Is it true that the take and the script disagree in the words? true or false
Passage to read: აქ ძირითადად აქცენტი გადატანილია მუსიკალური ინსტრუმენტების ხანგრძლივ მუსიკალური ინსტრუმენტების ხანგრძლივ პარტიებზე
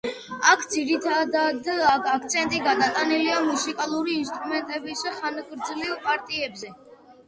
true